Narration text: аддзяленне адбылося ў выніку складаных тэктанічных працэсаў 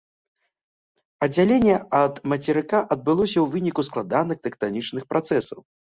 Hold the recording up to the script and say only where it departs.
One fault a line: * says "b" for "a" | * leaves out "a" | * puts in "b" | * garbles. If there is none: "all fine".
* puts in "ад мацерыка"